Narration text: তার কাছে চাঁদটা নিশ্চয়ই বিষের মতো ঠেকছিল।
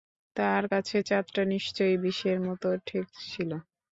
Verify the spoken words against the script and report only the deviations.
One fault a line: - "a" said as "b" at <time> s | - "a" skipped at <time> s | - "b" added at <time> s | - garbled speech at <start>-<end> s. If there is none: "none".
none